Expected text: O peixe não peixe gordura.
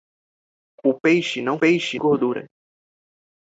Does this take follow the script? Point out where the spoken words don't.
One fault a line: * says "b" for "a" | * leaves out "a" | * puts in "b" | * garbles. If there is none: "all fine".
all fine